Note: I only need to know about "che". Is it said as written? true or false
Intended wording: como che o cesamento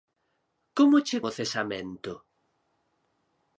true